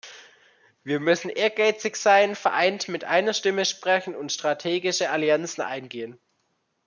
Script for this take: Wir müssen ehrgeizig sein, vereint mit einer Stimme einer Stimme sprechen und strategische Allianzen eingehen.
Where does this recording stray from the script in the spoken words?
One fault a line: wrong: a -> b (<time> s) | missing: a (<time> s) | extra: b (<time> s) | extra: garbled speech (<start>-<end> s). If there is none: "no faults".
missing: einer Stimme (3.6 s)